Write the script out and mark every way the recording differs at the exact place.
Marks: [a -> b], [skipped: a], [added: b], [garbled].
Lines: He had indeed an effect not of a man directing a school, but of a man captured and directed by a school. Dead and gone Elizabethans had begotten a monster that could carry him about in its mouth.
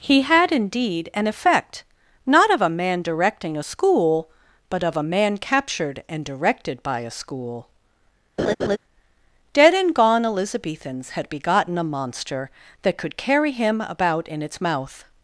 He had indeed an effect not of a man directing a school, but of a man captured and directed by a school. Dead and gone Elizabethans had begotten a monster that could carry him about in its mouth.